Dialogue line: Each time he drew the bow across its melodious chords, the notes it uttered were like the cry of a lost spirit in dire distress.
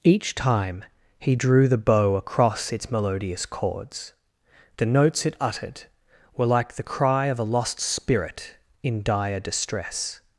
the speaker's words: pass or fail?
pass